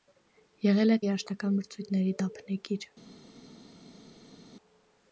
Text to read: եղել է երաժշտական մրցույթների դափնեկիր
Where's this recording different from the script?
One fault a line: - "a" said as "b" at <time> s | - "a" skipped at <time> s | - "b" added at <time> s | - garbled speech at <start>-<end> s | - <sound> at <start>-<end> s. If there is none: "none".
none